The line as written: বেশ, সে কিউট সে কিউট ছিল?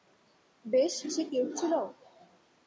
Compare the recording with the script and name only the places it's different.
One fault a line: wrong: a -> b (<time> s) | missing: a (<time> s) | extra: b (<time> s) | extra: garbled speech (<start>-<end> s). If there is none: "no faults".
missing: সে কিউট (1.5 s)